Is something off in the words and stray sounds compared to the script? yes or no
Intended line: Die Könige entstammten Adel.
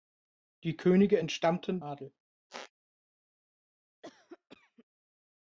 yes